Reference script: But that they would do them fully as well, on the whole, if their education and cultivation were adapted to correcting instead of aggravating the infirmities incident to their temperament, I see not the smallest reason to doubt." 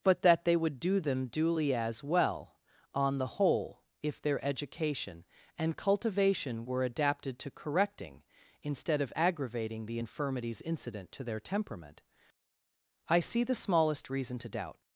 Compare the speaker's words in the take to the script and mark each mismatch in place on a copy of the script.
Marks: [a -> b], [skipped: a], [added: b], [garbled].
But that they would do them [fully -> duly] as well, on the whole, if their education and cultivation were adapted to correcting instead of aggravating the infirmities incident to their temperament, I see [skipped: not] the smallest reason to doubt."